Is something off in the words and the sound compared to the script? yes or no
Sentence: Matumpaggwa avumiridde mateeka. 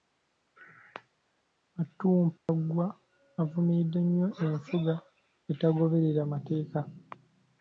yes